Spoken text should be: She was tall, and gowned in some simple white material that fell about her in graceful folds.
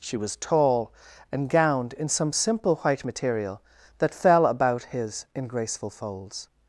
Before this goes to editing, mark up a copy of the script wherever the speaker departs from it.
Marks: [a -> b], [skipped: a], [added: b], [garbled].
She was tall, and gowned in some simple white material that fell about [her -> his] in graceful folds.